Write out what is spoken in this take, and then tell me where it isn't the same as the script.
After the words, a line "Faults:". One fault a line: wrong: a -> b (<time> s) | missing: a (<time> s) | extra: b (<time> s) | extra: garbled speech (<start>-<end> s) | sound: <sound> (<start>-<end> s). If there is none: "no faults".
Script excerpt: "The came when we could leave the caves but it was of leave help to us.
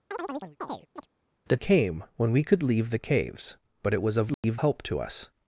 "The came when we could leave the caves but it was of leave help to us.
Faults:
sound: chirp (0.1-1.1 s)
sound: dropout (4.3-4.4 s)